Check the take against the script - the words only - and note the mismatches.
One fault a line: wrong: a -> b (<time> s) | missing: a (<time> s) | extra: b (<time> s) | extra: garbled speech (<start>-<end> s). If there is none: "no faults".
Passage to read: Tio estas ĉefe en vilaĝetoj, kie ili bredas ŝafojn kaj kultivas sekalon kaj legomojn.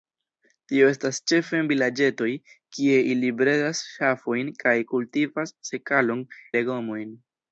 missing: kaj (6.2 s)